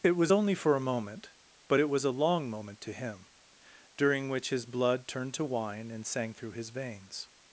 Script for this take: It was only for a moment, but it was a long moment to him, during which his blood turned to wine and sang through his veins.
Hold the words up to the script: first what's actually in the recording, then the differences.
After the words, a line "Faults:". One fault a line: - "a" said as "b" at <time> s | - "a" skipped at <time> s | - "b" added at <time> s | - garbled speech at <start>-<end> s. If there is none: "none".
It was only for a moment, but it was a long moment to him, during which his blood turned to wine and sang through his veins.
Faults:
none